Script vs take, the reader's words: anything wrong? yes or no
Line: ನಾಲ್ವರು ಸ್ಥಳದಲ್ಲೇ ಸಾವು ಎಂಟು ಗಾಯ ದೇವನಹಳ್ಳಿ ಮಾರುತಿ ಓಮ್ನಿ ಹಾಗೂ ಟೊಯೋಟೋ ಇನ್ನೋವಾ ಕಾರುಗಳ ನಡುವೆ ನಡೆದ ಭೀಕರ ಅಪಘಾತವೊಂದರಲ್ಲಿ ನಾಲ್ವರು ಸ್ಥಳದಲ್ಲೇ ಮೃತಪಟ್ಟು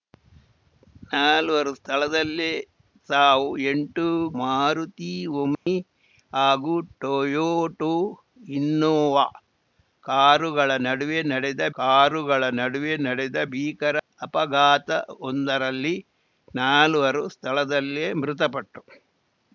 yes